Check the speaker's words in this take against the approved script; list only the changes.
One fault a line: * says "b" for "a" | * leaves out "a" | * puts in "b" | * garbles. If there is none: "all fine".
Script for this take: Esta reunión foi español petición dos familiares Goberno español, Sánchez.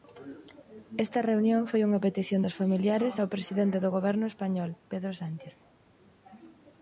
* says "unha" for "español"
* puts in "ao presidente do"
* puts in "Pedro"